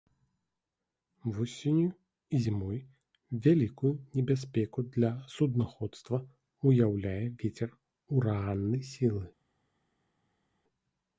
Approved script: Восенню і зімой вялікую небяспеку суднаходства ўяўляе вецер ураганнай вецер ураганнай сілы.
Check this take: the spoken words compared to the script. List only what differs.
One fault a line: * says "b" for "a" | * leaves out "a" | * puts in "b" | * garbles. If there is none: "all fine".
* puts in "для"
* leaves out "вецер ураганнай"